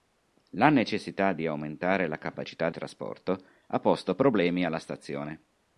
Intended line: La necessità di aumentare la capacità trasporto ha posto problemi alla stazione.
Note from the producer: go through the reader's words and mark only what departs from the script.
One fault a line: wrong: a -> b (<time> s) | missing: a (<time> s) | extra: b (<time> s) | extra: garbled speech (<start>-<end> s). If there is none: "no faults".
no faults